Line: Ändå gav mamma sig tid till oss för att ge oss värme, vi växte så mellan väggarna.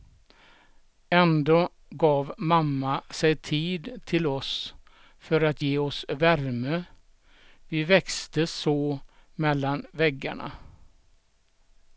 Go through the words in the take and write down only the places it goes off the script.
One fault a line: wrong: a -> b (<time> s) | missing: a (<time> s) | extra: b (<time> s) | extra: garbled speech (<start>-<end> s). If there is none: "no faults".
no faults